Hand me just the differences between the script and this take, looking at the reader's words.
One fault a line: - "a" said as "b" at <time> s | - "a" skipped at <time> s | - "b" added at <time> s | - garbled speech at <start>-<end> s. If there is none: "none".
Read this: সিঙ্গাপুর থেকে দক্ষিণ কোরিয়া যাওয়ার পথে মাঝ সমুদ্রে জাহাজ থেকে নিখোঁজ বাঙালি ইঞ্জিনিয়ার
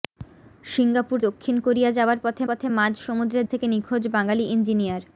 - "থেকে" skipped at 1.2 s
- "পথে" added at 2.5 s
- "জাহাজ" skipped at 3.4 s